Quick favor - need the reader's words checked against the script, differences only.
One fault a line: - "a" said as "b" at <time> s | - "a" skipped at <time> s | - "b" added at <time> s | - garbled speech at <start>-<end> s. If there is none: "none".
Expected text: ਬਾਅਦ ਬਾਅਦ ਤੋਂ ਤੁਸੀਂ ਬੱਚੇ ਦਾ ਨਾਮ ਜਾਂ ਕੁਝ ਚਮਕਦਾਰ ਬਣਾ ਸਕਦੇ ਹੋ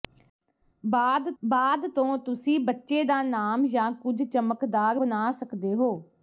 none